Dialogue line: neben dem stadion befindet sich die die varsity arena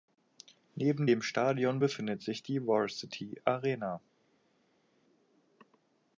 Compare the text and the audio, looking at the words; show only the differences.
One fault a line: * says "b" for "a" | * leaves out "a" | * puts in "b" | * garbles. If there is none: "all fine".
* leaves out "die"